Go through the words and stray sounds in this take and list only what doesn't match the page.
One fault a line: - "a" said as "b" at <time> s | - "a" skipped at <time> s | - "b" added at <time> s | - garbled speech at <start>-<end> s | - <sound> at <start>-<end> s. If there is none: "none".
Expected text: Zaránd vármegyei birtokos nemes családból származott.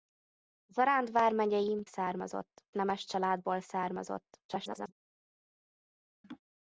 - "birtokos" said as "származott" at 1.8 s
- garbled speech at 4.5-4.9 s
- laugh at 6.2-6.4 s